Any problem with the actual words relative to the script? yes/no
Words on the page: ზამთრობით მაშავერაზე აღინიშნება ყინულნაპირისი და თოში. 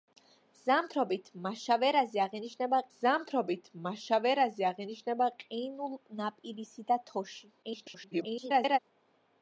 yes